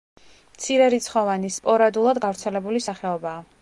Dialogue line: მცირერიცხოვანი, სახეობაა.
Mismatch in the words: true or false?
true